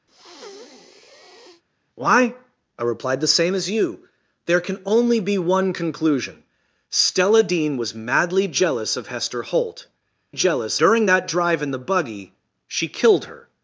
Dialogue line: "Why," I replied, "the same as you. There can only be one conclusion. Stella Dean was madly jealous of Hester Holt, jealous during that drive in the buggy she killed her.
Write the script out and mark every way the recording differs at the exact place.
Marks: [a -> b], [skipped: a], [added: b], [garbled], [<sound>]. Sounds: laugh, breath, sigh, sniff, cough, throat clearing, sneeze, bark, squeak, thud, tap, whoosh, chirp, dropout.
[breath] "Why," I replied, "the same as you. There can only be one conclusion. Stella Dean was madly jealous of Hester Holt, jealous during that drive in the buggy she killed her.